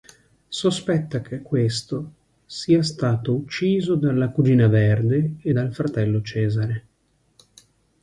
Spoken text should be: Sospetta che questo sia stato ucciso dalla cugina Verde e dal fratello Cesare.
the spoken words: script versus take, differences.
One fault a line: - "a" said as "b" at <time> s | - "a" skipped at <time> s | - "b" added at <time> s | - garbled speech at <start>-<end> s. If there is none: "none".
none